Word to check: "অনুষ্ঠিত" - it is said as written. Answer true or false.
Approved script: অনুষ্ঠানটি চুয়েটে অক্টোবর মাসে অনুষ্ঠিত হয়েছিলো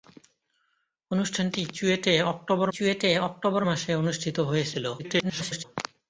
true